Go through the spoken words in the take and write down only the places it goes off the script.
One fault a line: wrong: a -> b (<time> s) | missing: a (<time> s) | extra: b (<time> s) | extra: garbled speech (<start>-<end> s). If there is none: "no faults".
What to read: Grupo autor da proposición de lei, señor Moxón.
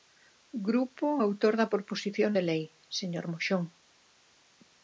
no faults